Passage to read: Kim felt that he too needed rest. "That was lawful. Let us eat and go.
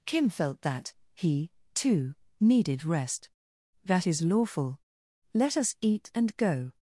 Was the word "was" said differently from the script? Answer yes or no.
yes